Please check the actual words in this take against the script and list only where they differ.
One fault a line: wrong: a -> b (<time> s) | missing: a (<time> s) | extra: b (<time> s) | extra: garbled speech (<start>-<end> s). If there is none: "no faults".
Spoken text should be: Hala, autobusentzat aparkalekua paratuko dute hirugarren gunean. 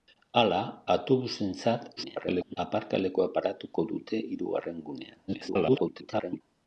extra: garbled speech (2.0-2.6 s)
extra: garbled speech (5.3-6.4 s)